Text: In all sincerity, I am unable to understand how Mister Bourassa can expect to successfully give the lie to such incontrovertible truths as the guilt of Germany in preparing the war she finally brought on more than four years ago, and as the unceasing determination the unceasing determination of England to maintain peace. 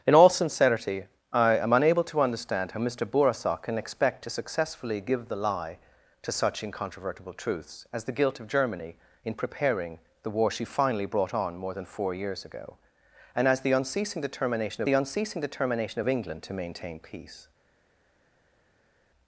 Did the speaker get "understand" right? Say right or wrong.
right